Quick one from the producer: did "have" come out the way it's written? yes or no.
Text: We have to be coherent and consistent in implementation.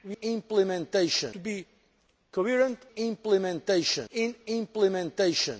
no